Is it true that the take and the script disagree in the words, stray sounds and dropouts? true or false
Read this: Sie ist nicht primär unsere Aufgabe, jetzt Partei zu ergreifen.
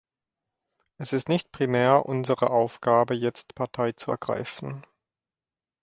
true